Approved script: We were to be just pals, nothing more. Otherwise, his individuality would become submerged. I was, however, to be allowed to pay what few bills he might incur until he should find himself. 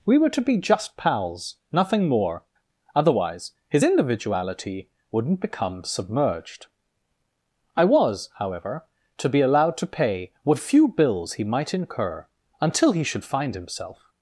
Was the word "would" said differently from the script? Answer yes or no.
yes